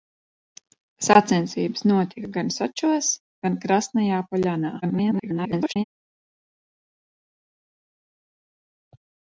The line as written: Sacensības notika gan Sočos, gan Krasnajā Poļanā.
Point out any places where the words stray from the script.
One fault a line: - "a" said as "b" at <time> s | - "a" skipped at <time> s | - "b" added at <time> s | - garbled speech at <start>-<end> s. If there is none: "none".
- garbled speech at 4.8-5.8 s